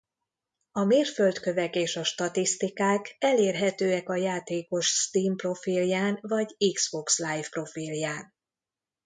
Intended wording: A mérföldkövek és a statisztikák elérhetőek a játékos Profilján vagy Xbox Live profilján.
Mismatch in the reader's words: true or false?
true